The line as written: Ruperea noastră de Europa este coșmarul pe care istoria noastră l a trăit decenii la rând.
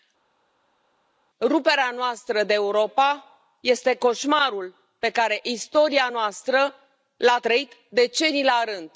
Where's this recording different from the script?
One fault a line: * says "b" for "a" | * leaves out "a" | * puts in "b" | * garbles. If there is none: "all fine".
all fine